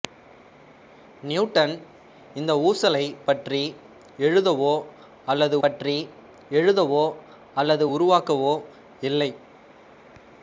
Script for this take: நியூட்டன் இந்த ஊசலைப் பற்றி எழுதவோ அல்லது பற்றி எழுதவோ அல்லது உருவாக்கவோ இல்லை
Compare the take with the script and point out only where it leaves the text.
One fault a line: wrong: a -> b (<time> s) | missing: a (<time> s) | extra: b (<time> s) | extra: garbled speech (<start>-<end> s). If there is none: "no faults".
no faults